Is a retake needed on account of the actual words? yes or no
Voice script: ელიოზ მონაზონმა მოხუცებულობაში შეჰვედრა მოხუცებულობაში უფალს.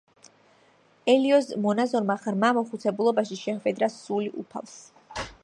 yes